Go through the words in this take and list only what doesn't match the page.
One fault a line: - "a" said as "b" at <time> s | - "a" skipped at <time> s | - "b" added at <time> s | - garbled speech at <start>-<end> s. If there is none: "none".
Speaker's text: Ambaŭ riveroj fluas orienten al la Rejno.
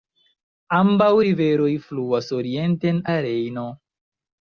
- "al" skipped at 3.0 s